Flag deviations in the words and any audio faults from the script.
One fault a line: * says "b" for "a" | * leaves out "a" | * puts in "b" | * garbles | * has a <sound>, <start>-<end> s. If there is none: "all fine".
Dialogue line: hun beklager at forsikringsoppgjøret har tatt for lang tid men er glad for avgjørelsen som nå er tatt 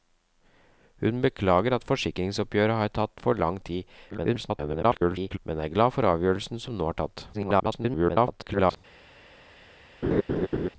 * garbles
* garbles
* has a laugh, 10.0-10.7 s